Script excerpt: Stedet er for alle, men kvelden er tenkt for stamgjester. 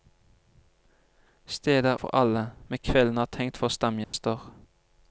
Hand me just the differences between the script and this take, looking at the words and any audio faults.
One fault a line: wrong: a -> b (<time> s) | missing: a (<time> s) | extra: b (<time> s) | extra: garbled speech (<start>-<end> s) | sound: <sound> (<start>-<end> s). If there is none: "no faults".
sound: dropout (4.0-4.1 s)